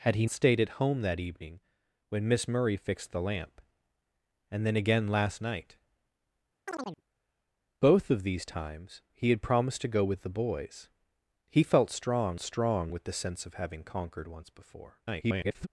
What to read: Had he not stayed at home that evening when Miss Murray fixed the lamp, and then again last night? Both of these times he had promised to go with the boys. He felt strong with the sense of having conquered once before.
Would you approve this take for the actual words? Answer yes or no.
no